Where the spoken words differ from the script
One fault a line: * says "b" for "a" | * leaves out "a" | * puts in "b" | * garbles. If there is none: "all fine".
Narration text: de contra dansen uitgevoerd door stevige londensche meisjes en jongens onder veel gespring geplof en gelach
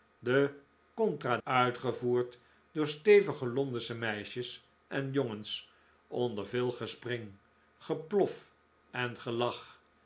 * leaves out "dansen"